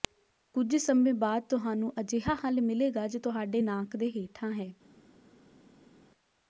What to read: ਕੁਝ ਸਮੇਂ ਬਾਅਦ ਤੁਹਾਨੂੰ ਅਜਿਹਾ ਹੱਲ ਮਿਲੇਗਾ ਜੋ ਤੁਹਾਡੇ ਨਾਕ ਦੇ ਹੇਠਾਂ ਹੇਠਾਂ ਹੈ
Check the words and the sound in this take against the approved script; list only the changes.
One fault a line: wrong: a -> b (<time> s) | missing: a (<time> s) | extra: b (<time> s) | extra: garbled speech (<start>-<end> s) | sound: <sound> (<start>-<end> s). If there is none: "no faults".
missing: ਹੇਠਾਂ (4.5 s)